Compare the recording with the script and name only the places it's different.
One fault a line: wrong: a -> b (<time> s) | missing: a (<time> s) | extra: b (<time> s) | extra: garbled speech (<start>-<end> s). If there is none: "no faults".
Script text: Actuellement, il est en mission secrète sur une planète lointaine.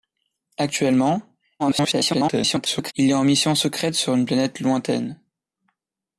extra: garbled speech (1.6-2.9 s)